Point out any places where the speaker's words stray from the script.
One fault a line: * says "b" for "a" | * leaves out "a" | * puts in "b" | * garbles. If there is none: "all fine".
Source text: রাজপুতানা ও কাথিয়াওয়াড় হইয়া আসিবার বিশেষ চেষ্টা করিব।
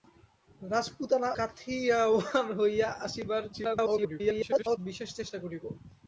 * leaves out "ও"
* garbles